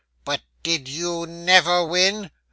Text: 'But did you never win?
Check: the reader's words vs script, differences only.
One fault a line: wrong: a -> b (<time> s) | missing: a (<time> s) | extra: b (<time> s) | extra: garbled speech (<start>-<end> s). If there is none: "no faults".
no faults